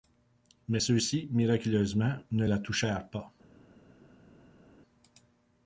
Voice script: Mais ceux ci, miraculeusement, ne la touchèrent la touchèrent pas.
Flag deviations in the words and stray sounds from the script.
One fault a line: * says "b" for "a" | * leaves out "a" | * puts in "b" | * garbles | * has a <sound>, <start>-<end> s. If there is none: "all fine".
* leaves out "la touchèrent"